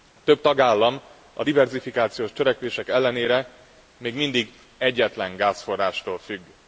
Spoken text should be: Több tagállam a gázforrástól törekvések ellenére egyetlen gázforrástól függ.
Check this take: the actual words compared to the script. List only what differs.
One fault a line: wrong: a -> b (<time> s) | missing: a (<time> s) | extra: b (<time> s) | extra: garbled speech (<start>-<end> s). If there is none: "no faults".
wrong: gázforrástól -> diverzifikációs (1.4 s)
extra: még mindig (4.0 s)